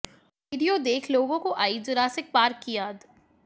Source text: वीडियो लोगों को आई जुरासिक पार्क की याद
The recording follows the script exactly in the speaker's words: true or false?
false